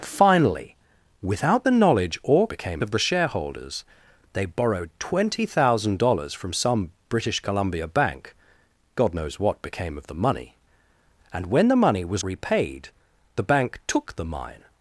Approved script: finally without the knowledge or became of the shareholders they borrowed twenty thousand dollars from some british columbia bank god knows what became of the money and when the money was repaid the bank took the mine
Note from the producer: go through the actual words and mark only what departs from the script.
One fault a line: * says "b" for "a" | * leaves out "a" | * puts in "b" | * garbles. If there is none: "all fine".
all fine